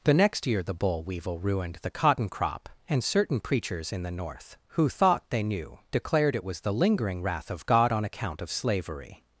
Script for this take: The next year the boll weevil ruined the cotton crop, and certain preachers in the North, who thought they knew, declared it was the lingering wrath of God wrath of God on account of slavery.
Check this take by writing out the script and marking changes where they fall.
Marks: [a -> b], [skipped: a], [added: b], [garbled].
The next year the boll weevil ruined the cotton crop, and certain preachers in the North, who thought they knew, declared it was the lingering wrath of God [skipped: wrath of God] on account of slavery.